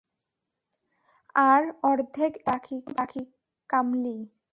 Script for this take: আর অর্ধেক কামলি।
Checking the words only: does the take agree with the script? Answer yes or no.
no